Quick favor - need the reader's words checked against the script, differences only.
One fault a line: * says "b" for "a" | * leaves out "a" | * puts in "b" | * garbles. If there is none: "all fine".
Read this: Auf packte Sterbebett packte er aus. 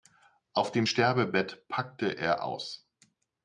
* says "dem" for "packte"